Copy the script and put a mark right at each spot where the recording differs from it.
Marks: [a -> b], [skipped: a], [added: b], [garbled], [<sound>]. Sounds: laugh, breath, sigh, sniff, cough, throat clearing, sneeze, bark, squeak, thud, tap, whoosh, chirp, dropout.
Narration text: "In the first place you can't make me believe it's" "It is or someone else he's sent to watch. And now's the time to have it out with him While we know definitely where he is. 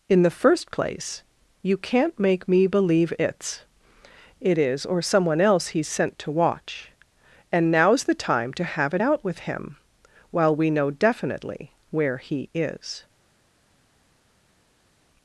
"In the first place you can't make me believe it's" "It is or someone else he's sent to watch. And now's the time to have it out with him While we know definitely where he is.